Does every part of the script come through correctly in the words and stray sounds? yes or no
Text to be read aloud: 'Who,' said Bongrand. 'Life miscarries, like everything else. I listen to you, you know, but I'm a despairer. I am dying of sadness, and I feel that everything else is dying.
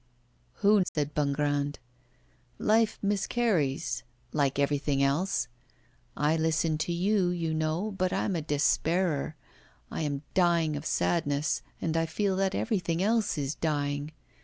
no